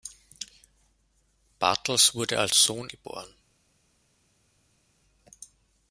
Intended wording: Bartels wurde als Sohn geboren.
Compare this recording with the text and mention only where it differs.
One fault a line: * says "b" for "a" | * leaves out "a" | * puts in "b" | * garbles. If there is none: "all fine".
all fine